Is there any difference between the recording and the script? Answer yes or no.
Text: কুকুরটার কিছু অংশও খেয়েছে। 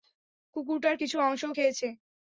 no